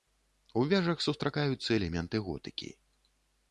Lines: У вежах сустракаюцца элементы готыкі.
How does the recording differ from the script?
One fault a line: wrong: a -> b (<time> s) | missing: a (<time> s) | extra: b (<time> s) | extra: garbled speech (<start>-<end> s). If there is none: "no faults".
no faults